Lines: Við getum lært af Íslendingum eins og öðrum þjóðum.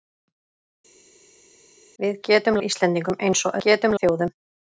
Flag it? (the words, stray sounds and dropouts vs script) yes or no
yes